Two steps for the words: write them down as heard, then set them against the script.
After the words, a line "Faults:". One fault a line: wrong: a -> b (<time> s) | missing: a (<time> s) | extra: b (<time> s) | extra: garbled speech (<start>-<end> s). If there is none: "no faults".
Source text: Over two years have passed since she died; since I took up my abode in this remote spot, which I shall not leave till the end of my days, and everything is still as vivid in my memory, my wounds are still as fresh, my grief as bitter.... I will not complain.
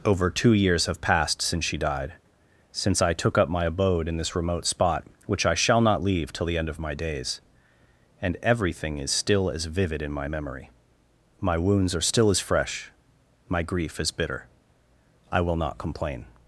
Over two years have passed since she died; since I took up my abode in this remote spot, which I shall not leave till the end of my days, and everything is still as vivid in my memory, my wounds are still as fresh, my grief as bitter.... I will not complain.
Faults:
no faults